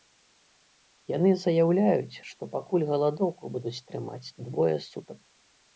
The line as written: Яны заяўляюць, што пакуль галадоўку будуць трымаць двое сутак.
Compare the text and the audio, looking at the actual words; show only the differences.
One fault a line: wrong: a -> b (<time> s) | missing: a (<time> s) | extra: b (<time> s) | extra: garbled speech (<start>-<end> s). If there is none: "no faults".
no faults